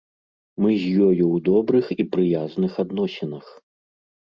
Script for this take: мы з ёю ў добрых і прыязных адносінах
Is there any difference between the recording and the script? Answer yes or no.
no